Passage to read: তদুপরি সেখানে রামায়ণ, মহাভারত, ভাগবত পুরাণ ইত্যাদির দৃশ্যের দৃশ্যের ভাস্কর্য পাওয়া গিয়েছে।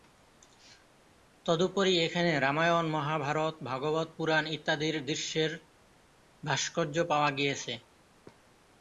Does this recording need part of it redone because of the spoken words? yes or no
yes